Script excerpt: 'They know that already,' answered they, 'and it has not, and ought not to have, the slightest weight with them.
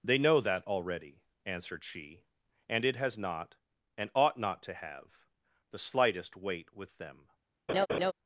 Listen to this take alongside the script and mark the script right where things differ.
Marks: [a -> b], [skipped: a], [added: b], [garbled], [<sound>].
'They know that already,' answered [they, -> she] 'and it has not, and ought not to have, the slightest weight with them. [laugh]